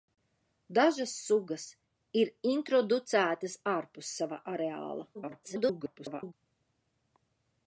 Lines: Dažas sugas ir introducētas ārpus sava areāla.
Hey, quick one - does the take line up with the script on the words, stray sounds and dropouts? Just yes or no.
no